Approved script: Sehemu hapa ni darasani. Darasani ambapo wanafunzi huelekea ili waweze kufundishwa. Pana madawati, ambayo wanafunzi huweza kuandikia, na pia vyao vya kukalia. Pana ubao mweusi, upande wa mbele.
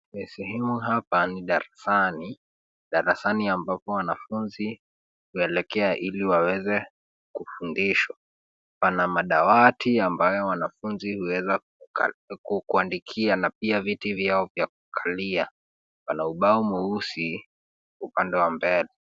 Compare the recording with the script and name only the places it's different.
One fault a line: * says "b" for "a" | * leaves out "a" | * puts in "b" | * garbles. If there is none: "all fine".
* puts in "viti"